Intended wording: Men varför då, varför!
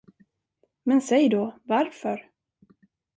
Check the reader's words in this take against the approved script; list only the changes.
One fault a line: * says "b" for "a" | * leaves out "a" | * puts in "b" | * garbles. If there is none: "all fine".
* says "säg" for "varför"